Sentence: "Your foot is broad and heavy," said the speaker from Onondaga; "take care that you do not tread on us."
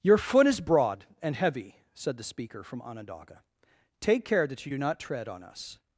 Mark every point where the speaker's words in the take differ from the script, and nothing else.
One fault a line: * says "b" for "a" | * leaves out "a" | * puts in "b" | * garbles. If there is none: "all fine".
all fine